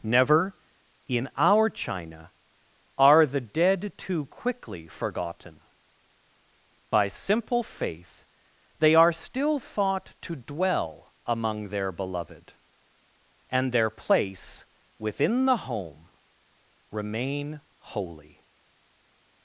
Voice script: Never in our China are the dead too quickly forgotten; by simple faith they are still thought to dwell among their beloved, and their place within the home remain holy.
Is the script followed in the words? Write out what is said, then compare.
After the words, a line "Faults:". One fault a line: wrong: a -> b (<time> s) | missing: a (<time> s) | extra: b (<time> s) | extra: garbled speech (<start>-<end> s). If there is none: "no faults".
Never in our China are the dead too quickly forgotten; by simple faith they are still thought to dwell among their beloved, and their place within the home remain holy.
Faults:
no faults